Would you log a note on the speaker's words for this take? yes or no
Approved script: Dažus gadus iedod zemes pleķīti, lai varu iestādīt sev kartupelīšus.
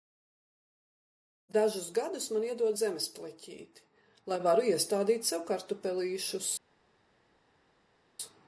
yes